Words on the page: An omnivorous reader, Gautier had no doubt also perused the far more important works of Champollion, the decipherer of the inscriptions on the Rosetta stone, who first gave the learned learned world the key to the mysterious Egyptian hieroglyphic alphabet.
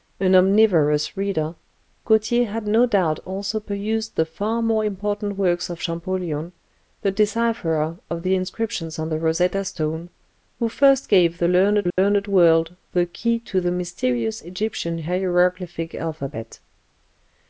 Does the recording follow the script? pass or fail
pass